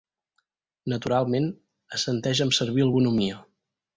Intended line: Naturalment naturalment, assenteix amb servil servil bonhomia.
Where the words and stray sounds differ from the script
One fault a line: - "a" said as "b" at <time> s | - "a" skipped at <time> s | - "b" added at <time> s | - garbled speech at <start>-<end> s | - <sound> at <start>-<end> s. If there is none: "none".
- "naturalment" skipped at 1.4 s
- "servil" skipped at 2.9 s